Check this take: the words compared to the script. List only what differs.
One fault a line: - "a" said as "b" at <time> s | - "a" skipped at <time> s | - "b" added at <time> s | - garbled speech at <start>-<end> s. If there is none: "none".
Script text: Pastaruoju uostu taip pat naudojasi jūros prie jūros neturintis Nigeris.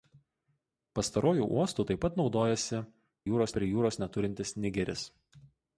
none